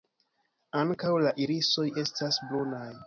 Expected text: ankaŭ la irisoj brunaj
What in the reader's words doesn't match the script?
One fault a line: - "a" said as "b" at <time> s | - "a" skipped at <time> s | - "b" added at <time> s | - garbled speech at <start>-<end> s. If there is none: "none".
- "estas" added at 2.1 s